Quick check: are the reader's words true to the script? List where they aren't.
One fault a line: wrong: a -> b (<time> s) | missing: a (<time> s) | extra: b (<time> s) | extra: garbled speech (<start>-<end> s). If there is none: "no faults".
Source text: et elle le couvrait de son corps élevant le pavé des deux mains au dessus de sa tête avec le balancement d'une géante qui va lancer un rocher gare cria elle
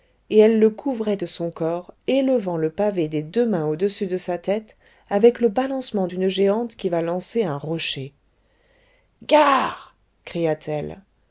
extra: t (10.5 s)